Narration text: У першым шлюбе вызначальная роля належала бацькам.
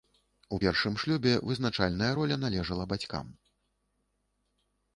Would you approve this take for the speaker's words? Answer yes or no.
yes